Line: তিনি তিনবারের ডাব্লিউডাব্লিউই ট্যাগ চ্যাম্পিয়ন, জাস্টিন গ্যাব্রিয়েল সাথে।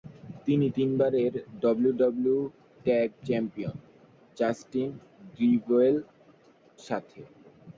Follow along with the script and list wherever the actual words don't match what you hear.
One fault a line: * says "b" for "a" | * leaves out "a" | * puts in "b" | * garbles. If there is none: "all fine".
all fine